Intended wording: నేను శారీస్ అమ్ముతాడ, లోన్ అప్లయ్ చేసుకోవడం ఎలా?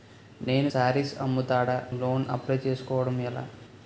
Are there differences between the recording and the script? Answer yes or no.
no